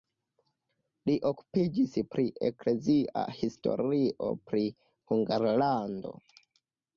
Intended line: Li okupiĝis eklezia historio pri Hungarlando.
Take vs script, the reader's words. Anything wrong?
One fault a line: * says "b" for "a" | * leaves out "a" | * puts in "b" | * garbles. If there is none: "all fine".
* puts in "pri"